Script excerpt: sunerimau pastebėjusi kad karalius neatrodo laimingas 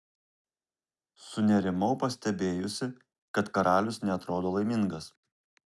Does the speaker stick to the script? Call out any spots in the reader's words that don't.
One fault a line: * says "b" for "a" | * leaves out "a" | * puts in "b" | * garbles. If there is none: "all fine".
all fine